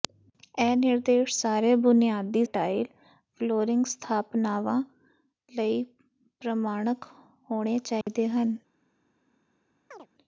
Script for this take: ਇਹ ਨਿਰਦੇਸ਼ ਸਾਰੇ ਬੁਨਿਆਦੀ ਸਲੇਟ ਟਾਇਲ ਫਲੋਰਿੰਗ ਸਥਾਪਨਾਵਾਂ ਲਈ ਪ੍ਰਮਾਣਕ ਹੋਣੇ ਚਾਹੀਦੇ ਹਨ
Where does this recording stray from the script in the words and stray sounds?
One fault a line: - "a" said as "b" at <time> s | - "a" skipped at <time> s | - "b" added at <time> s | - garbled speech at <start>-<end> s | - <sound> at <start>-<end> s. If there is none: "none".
- "ਸਲੇਟ" skipped at 2.4 s
- dropout at 8.0-8.1 s
- chirp at 9.9-10.1 s